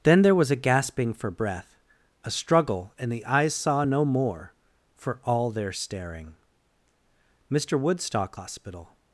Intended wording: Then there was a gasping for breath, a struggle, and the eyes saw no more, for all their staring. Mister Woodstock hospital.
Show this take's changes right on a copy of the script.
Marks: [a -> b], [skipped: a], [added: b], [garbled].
Then there was a gasping for breath, a struggle, and the eyes saw no more, for all their staring. Mister Woodstock hospital.